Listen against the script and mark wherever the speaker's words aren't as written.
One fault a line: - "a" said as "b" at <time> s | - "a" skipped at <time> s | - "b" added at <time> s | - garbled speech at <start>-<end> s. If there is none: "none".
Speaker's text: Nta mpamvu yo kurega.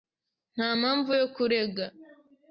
none